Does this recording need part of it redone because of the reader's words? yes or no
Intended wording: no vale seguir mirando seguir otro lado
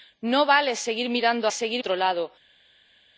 no